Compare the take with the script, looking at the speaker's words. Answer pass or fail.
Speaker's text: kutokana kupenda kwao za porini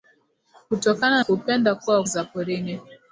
pass